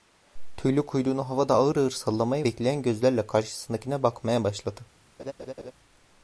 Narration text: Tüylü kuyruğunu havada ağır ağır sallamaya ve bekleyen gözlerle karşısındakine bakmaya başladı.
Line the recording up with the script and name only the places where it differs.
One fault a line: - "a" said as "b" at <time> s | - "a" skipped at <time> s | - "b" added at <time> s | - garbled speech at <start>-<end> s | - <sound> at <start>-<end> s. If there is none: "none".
- "ve" skipped at 2.5 s
- laugh at 5.2-5.7 s